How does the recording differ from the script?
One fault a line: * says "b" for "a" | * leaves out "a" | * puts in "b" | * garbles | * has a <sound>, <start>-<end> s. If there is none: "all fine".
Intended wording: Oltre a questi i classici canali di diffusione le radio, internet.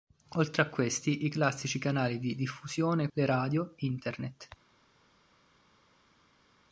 all fine